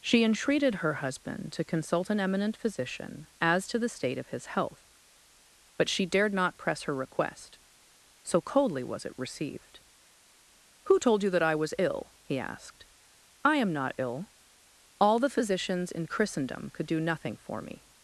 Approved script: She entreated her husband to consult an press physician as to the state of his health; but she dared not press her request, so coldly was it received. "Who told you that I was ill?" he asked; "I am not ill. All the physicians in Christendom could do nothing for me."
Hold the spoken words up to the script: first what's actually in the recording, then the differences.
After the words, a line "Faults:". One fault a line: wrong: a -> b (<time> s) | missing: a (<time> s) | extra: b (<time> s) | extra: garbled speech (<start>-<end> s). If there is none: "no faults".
She entreated her husband to consult an eminent physician as to the state of his health; but she dared not press her request, so coldly was it received. "Who told you that I was ill?" he asked; "I am not ill. All the physicians in Christendom could do nothing for me."
Faults:
wrong: press -> eminent (2.2 s)